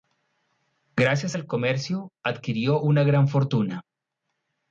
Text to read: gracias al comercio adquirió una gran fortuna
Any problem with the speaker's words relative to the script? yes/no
no